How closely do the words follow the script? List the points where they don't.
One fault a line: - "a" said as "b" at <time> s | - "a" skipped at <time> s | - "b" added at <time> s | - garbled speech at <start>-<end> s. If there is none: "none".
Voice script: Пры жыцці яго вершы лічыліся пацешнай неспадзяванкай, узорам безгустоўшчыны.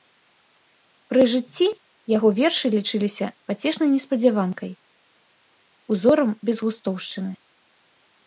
none